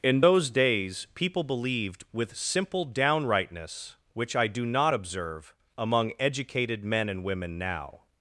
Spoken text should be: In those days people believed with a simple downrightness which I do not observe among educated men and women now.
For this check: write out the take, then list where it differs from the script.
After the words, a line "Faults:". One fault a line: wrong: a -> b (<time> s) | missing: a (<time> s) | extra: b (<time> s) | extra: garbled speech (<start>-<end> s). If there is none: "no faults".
In those days people believed with simple downrightness which I do not observe among educated men and women now.
Faults:
missing: a (2.4 s)